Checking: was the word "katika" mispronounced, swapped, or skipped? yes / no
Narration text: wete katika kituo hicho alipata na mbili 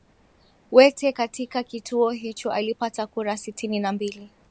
no